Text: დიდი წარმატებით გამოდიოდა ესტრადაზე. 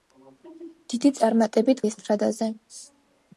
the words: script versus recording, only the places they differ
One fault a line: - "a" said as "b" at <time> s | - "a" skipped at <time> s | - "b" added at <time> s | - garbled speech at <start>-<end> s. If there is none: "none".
- "გამოდიოდა" skipped at 1.8 s